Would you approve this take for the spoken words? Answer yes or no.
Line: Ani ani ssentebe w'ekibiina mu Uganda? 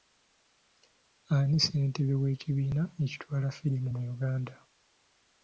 no